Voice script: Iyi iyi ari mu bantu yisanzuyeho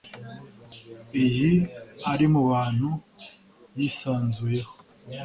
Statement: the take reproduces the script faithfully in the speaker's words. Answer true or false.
false